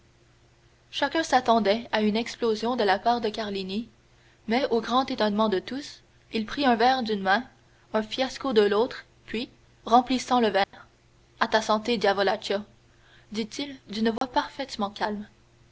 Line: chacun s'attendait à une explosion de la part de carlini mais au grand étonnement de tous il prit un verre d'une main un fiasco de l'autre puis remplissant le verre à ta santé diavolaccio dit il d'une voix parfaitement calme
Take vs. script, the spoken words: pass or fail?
pass